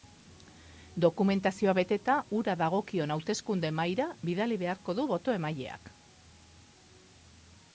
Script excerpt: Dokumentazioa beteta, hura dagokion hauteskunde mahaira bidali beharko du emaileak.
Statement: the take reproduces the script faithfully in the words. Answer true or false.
false